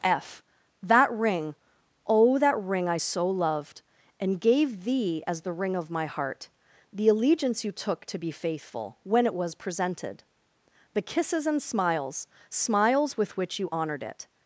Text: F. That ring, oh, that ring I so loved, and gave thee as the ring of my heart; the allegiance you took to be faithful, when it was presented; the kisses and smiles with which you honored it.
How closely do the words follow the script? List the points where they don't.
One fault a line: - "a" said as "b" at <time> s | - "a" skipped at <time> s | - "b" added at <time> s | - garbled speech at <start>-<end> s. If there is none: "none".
- "smiles" added at 12.5 s